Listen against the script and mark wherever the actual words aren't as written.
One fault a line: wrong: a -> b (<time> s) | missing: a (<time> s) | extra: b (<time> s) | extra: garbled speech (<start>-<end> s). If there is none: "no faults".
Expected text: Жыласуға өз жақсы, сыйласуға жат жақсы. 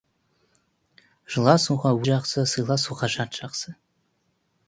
missing: өз (1.9 s)